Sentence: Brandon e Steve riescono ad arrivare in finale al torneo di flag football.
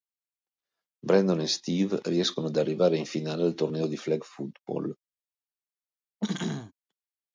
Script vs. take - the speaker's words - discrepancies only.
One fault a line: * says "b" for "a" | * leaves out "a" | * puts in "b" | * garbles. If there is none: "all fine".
all fine